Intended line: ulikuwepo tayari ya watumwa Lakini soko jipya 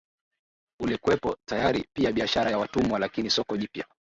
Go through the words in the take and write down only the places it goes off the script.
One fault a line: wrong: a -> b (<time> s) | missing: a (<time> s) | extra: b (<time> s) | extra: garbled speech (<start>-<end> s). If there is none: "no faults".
extra: pia biashara (1.9 s)